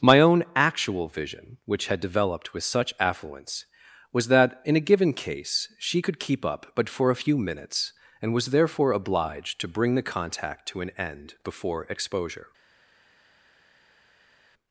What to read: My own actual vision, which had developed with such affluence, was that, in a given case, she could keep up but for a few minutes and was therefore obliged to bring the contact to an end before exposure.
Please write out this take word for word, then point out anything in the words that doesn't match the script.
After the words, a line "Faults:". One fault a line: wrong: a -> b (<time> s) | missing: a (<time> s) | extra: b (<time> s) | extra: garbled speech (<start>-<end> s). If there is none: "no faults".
My own actual vision, which had developed with such affluence, was that, in a given case, she could keep up but for a few minutes and was therefore obliged to bring the contact to an end before exposure.
Faults:
no faults